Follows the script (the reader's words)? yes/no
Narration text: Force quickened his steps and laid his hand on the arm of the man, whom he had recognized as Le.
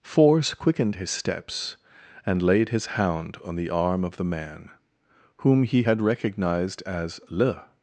no